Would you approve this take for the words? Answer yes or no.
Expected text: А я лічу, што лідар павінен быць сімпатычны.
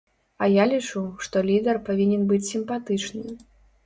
yes